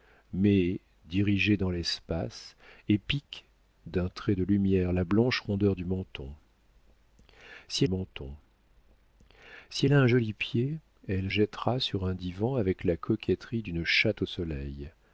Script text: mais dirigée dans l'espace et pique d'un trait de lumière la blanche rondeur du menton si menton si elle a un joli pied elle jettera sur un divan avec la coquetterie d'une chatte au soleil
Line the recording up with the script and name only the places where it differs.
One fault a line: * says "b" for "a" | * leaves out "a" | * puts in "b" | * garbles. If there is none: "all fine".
all fine